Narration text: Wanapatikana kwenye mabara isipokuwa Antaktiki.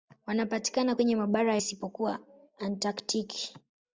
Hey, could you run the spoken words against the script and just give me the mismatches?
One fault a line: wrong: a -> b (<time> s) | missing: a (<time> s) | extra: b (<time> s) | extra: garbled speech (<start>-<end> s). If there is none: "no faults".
no faults